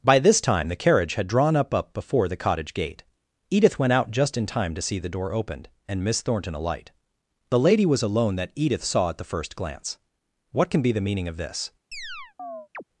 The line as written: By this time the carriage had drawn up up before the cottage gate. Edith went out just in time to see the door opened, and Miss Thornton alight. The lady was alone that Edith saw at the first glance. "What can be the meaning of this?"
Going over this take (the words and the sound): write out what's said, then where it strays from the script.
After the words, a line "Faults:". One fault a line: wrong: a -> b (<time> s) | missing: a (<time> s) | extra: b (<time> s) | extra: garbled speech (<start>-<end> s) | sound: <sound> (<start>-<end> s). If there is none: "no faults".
By this time the carriage had drawn up up before the cottage gate. Edith went out just in time to see the door opened, and Miss Thornton alight. The lady was alone that Edith saw at the first glance. "What can be the meaning of this?"
Faults:
sound: chirp (11.9-12.8 s)